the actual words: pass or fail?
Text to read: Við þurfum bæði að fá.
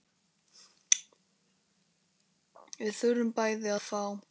pass